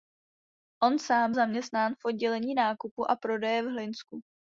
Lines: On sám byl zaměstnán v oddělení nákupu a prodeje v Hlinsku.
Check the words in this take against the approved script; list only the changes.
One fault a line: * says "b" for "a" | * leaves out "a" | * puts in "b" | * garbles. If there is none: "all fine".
* leaves out "byl"